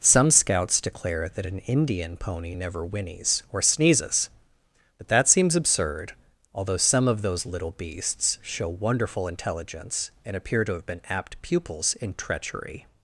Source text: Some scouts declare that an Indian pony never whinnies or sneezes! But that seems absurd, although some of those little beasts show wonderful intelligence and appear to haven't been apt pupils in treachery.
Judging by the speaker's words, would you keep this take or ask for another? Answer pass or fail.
fail